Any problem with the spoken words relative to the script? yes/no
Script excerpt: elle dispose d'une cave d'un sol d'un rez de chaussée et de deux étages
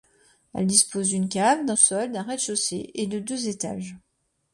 no